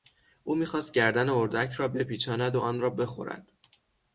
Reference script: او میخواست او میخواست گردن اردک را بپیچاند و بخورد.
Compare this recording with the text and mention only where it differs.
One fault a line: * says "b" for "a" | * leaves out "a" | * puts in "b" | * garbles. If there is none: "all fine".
* leaves out "او میخواست"
* puts in "آن را"